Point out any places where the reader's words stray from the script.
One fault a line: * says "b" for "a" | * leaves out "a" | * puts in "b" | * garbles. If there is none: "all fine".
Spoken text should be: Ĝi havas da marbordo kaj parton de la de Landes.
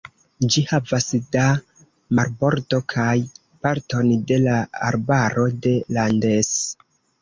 * puts in "arbaro"